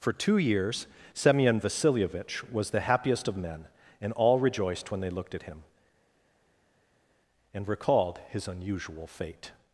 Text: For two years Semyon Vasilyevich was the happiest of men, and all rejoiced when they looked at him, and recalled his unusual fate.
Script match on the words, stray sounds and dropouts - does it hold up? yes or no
yes